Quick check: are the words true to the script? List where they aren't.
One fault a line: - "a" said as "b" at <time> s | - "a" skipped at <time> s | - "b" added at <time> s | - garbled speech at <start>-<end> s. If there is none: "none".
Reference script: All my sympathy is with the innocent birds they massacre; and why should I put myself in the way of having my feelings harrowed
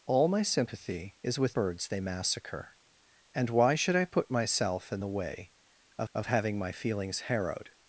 - "the innocent" skipped at 1.5 s
- "of" added at 6.1 s